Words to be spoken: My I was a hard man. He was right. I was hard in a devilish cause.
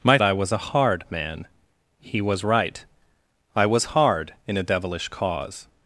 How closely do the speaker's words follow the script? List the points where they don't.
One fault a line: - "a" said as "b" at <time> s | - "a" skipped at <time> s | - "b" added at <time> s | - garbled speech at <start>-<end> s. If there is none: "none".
none